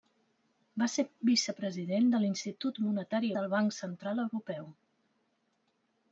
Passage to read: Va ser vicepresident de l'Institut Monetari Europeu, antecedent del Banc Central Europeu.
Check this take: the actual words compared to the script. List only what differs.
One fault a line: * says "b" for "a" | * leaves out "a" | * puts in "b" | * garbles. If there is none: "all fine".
* leaves out "Europeu antecedent"